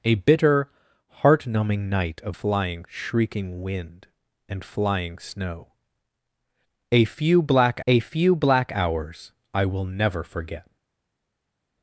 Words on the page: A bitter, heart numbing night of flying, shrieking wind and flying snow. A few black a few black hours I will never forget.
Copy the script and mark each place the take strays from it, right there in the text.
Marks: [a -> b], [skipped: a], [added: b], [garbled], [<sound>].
A bitter, heart numbing night of flying, shrieking wind and flying snow. A few black a few black hours I will never forget.